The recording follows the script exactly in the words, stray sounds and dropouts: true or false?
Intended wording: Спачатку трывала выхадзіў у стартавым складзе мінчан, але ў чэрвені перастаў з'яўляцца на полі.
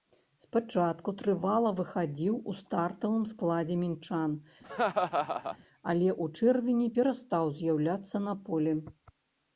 false